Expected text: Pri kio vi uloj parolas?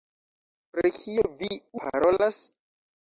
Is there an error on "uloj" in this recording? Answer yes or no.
yes